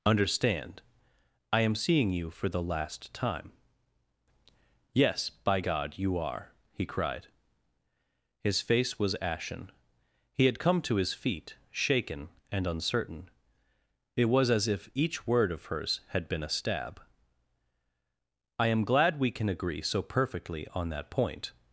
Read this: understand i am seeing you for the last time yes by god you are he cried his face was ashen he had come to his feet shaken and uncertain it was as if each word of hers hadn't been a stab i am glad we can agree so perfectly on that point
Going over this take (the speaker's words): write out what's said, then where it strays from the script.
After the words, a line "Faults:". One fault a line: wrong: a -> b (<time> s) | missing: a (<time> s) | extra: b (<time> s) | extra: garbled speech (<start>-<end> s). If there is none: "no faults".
understand i am seeing you for the last time yes by god you are he cried his face was ashen he had come to his feet shaken and uncertain it was as if each word of hers had been a stab i am glad we can agree so perfectly on that point
Faults:
wrong: hadn't -> had (16.1 s)